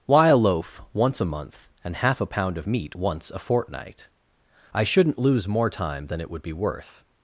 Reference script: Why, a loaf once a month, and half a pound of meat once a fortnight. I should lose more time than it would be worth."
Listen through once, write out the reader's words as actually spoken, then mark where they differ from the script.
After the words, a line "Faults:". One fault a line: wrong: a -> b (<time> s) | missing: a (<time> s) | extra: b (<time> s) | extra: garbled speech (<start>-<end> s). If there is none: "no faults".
Why, a loaf once a month, and half a pound of meat once a fortnight. I shouldn't lose more time than it would be worth."
Faults:
wrong: should -> shouldn't (4.8 s)